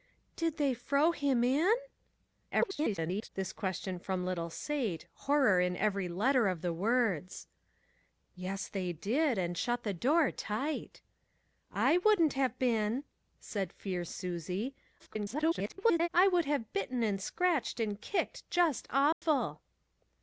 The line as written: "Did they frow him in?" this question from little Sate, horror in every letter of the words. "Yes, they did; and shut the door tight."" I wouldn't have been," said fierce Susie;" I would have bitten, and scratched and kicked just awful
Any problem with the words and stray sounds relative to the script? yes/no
yes